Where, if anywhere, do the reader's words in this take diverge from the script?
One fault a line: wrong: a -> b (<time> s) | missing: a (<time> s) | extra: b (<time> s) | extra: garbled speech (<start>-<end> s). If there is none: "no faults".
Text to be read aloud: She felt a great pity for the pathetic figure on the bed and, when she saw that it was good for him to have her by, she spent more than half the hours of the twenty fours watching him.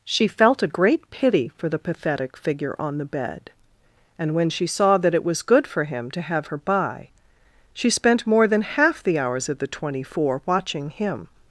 wrong: fours -> four (10.0 s)